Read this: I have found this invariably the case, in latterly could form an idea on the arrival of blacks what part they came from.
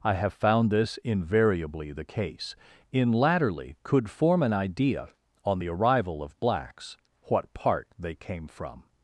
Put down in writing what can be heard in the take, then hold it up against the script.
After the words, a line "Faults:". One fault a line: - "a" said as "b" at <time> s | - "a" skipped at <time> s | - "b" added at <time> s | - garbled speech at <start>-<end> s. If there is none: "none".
I have found this invariably the case, in latterly could form an idea on the arrival of blacks what part they came from.
Faults:
none